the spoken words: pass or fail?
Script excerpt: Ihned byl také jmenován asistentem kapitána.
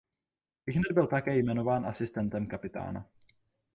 pass